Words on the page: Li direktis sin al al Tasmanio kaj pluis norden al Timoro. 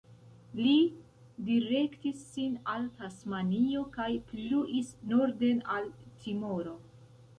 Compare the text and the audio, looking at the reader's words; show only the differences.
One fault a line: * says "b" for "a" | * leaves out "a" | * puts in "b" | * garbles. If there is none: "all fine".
* leaves out "al"